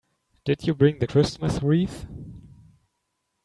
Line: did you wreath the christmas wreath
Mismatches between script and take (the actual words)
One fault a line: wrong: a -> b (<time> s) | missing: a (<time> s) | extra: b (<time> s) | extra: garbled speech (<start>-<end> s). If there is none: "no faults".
wrong: wreath -> bring (0.7 s)